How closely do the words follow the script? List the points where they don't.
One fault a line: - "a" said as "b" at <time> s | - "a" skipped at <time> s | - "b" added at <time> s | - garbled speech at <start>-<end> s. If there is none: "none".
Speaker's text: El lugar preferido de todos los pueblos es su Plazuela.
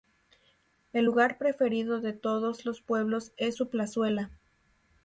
none